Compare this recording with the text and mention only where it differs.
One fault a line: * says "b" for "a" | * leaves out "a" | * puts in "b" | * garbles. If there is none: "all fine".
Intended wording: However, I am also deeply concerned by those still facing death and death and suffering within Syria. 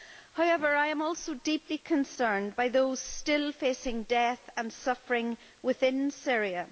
* leaves out "death and"